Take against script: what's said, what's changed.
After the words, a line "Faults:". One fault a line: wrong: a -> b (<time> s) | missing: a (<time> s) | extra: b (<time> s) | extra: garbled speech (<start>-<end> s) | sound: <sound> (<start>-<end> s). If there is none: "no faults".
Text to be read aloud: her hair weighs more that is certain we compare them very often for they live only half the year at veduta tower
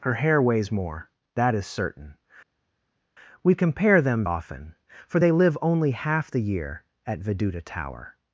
her hair weighs more that is certain we compare them often for they live only half the year at veduta tower
Faults:
missing: very (4.2 s)